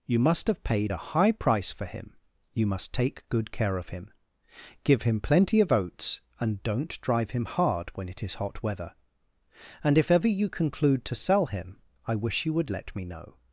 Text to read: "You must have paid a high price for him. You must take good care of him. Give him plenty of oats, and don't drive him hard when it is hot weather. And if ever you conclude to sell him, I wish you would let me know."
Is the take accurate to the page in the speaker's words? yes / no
yes